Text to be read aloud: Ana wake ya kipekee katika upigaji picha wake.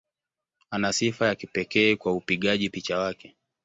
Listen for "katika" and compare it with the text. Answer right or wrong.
wrong